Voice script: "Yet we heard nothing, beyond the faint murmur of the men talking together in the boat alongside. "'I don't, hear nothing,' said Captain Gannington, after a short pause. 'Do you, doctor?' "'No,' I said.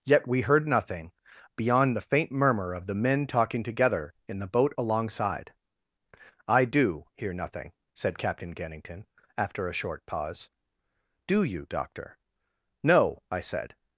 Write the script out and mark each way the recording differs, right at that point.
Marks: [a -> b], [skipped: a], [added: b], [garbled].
"Yet we heard nothing, beyond the faint murmur of the men talking together in the boat alongside. "'I [don't, -> do] hear nothing,' said Captain Gannington, after a short pause. 'Do you, doctor?' "'No,' I said.